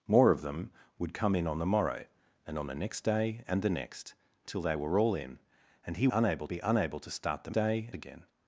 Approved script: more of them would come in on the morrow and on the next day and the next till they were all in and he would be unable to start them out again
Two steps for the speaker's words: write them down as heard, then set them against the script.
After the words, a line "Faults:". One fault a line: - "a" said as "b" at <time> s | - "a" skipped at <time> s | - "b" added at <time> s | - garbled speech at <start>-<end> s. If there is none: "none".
more of them would come in on the morrow and on the next day and the next till they were all in and he unable be unable to start them day again
Faults:
- "would" said as "unable" at 6.1 s
- "out" said as "day" at 7.5 s